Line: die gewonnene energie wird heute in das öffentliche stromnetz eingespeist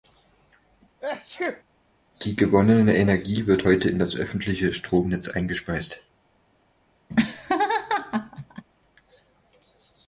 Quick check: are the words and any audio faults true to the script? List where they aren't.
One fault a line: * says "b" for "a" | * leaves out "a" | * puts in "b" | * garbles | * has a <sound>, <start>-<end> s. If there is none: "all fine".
* has a sneeze, 1.0-1.6 s
* has a laugh, 7.1-8.7 s